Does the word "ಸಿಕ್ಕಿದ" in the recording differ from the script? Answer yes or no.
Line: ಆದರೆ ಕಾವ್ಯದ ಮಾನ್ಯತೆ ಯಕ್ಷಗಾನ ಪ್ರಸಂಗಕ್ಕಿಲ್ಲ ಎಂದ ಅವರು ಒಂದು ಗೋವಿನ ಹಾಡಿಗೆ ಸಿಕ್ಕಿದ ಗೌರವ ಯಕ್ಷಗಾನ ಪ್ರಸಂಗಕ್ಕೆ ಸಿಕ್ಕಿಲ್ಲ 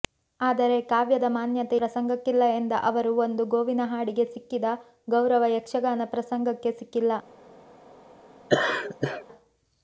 no